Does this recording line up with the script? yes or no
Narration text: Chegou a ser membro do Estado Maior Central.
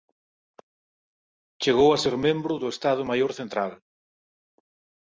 yes